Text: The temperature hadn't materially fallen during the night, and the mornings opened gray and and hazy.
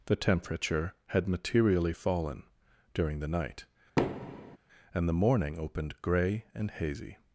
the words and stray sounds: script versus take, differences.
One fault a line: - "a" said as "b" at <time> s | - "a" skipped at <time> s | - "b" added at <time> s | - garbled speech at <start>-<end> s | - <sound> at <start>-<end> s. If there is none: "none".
- "hadn't" said as "had" at 1.1 s
- thud at 4.0-4.6 s
- "mornings" said as "morning" at 5.2 s
- "and" skipped at 6.7 s